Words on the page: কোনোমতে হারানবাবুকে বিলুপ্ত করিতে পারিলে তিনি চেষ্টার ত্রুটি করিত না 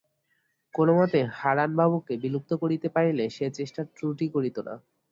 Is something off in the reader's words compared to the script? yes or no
yes